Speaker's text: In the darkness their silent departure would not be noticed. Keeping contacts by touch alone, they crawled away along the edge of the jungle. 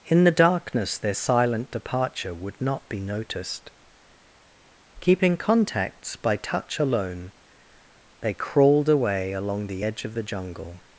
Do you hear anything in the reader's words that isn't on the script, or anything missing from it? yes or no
no